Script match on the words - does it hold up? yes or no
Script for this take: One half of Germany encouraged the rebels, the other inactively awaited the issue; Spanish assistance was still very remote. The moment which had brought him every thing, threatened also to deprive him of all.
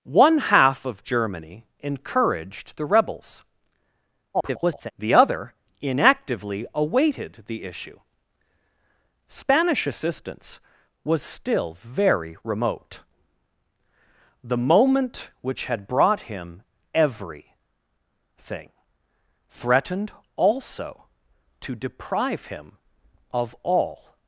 no